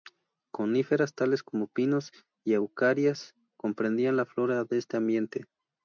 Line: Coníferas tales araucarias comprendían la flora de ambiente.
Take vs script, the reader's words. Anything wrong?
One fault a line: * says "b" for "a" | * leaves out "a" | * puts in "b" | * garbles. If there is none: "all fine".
* puts in "como pinos y"
* puts in "este"